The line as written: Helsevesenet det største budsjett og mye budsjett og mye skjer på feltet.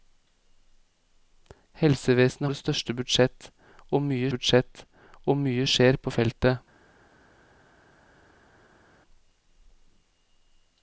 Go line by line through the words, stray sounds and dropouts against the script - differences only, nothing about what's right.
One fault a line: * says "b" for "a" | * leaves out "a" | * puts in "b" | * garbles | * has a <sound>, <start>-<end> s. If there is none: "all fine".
all fine